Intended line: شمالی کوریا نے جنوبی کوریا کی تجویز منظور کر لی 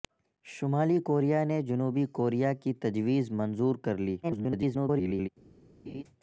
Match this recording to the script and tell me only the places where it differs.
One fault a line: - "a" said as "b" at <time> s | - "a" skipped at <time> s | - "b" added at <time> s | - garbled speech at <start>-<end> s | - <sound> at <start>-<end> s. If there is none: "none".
- garbled speech at 4.2-5.3 s
- laugh at 5.9-6.0 s